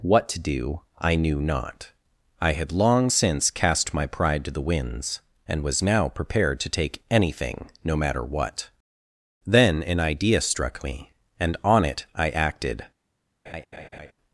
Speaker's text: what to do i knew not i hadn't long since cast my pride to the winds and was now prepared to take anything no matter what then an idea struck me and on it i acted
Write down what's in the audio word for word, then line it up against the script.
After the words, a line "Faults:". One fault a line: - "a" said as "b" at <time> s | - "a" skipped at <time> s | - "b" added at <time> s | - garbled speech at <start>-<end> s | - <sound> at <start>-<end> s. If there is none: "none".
what to do i knew not i had long since cast my pride to the winds and was now prepared to take anything no matter what then an idea struck me and on it i acted
Faults:
- "hadn't" said as "had" at 2.5 s
- laugh at 13.5-14.1 s